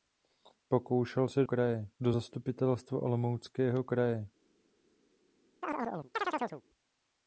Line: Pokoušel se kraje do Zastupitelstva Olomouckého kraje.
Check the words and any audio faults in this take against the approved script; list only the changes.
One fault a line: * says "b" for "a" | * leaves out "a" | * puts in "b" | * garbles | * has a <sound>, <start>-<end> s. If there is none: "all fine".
* has a chirp, 5.6-6.6 s